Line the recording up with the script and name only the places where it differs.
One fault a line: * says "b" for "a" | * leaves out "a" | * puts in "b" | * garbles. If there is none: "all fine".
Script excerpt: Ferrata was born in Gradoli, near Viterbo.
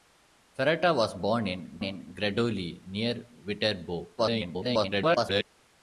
* puts in "in"
* garbles